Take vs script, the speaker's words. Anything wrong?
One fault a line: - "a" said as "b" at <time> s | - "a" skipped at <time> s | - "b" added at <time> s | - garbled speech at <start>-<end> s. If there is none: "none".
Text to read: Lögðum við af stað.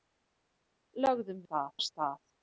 - "við" said as "stað" at 1.4 s